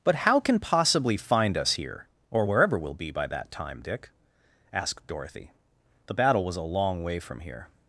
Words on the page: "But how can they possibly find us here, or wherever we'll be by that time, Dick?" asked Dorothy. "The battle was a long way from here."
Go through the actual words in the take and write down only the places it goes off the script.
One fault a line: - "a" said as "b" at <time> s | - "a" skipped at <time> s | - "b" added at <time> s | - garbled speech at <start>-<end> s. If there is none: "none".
- "they" skipped at 0.6 s